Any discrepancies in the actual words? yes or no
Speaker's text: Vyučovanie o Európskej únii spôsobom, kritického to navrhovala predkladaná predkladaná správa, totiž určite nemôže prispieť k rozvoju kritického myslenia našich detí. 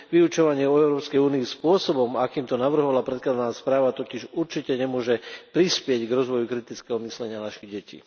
yes